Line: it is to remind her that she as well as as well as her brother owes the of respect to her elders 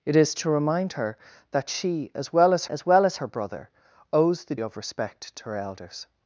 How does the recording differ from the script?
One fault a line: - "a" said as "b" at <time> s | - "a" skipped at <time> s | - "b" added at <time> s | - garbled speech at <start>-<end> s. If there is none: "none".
none